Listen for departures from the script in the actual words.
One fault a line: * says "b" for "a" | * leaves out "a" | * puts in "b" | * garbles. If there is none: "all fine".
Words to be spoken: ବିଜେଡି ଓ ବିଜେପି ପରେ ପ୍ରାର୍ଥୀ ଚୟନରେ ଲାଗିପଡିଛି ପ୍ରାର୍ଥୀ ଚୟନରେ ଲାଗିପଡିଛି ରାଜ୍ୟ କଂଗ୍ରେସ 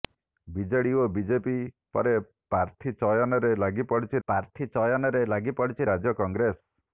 all fine